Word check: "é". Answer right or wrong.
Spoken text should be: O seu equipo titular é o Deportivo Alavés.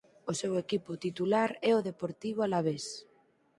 right